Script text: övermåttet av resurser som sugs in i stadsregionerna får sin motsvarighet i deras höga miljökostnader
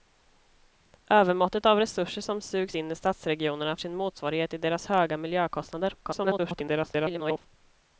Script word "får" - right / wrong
wrong